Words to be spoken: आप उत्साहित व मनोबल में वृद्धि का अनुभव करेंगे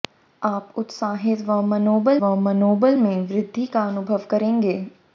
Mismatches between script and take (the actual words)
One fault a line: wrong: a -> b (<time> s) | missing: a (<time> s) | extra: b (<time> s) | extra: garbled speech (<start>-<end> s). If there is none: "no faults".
extra: व मनोबल (2.2 s)